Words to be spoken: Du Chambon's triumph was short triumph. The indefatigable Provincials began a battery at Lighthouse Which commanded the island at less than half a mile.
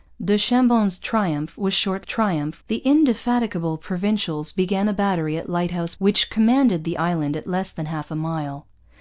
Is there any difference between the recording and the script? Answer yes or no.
no